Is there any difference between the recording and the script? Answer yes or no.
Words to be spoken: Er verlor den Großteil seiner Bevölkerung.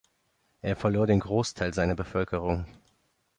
no